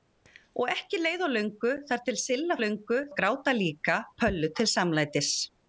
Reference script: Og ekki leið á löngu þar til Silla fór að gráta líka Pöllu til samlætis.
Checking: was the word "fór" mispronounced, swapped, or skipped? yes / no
yes